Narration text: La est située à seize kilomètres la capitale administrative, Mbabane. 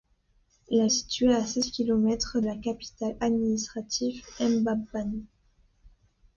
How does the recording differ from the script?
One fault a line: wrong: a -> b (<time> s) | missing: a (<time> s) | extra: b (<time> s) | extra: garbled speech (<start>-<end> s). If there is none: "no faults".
no faults